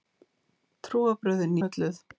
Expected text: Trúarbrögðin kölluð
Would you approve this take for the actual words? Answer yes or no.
yes